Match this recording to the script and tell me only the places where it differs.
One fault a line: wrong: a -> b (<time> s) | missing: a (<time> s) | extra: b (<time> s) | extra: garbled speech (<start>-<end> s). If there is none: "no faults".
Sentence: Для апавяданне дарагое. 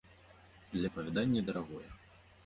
no faults